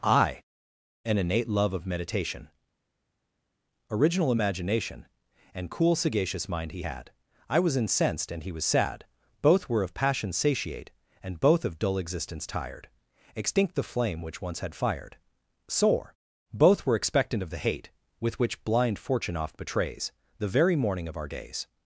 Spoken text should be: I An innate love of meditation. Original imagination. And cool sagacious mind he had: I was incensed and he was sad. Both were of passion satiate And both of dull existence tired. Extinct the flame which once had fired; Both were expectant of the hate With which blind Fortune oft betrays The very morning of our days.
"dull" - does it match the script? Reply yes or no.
yes